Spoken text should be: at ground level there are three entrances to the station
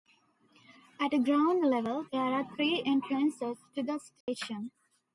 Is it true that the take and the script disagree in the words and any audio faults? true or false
true